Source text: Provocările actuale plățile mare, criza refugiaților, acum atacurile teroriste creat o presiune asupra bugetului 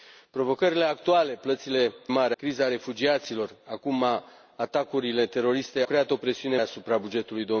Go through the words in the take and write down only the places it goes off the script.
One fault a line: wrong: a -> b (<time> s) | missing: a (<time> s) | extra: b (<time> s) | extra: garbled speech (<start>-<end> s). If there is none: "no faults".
no faults